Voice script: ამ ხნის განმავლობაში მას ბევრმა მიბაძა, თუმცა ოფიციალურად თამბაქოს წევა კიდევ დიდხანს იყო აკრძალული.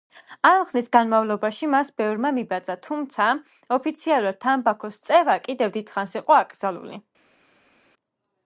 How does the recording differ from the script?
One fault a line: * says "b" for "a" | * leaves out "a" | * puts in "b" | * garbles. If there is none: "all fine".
all fine